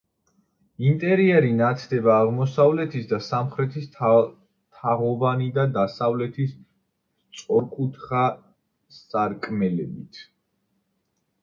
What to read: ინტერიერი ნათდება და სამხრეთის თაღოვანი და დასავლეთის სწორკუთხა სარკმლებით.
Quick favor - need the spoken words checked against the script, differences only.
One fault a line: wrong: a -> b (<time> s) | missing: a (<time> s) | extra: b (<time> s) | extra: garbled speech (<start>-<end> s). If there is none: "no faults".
extra: აღმოსავლეთის (2.2 s)